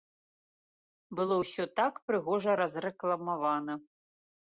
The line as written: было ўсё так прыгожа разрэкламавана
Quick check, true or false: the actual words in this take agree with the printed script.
true